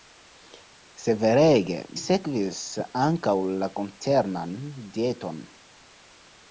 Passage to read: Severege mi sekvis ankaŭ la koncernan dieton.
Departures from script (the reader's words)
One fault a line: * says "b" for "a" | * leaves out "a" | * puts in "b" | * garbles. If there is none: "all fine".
* leaves out "mi"